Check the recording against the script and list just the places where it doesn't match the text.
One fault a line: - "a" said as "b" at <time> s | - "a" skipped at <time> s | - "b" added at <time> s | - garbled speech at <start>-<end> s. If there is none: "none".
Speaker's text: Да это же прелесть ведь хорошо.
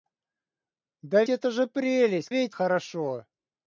none